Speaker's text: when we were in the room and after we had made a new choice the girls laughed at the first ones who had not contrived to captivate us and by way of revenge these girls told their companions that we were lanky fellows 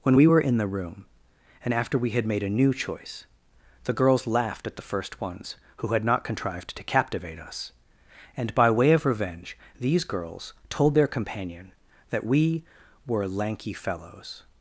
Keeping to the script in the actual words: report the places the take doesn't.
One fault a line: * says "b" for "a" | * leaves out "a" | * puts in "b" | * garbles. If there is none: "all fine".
* says "companion" for "companions"